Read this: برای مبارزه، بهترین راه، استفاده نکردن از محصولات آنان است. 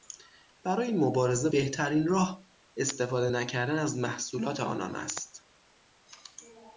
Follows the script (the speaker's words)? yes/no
yes